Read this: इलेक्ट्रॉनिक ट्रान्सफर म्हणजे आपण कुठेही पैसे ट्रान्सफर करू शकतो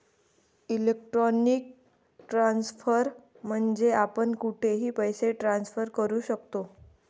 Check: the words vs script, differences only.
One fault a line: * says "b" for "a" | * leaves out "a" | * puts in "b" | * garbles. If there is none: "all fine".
all fine